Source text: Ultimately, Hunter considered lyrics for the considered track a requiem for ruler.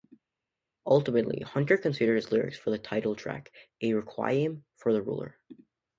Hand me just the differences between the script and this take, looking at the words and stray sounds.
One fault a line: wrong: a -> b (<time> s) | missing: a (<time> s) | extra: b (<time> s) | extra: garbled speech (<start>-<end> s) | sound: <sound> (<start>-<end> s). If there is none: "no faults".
extra: his (2.1 s)
wrong: considered -> title (2.8 s)
extra: the (4.9 s)